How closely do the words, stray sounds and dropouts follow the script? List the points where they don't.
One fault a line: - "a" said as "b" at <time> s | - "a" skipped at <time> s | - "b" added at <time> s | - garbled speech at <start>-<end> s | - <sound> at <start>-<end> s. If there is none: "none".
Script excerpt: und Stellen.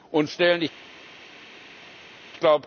none